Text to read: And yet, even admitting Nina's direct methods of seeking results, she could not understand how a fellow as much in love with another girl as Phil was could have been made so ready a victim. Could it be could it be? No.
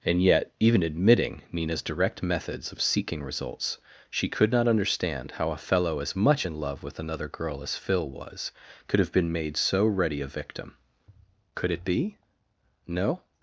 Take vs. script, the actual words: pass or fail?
fail